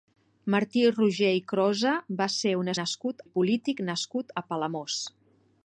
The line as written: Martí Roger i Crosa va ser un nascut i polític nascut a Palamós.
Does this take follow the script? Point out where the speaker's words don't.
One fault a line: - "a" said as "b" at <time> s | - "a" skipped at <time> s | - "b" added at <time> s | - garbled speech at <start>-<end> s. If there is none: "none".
none